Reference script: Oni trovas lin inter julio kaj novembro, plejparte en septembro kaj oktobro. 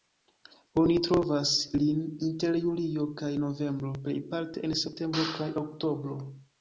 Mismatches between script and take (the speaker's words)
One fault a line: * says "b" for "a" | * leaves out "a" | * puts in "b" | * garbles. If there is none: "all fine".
all fine